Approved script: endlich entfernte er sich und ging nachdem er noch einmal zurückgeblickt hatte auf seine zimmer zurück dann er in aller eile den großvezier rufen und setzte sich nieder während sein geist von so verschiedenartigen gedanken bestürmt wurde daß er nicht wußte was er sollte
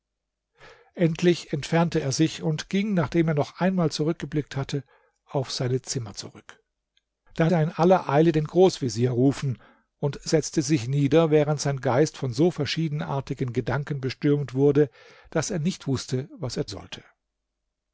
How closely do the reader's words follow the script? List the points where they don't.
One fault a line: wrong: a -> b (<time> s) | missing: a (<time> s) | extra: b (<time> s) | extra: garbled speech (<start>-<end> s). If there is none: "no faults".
no faults